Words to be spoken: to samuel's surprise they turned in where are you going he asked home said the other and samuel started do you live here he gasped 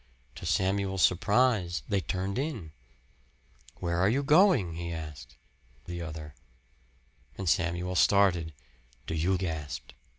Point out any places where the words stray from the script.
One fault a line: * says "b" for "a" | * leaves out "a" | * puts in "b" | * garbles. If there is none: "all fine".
* leaves out "home said"
* leaves out "live here he"